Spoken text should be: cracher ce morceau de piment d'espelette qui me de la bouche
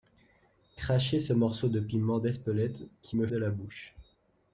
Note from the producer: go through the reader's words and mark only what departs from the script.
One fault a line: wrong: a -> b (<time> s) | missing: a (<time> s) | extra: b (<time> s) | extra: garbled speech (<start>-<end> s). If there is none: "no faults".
no faults